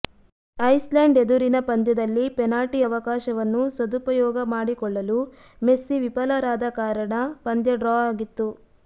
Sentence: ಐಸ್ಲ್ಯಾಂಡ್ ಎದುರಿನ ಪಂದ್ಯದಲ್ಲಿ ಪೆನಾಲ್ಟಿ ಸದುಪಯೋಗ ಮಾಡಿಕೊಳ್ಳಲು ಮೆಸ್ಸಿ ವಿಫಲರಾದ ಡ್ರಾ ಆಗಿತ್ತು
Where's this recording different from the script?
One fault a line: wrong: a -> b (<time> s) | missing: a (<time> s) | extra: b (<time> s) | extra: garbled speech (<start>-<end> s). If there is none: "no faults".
extra: ಅವಕಾಶವನ್ನು (2.8 s)
extra: ಕಾರಣ ಪಂದ್ಯ (6.8 s)